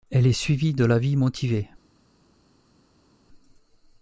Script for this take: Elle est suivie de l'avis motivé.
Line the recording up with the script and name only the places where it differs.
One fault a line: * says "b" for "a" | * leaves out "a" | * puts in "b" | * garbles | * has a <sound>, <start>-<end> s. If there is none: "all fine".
all fine